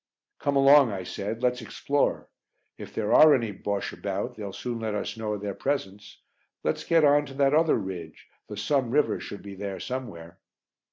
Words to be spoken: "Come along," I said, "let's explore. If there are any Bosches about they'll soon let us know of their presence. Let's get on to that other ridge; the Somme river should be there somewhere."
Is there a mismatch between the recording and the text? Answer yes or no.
no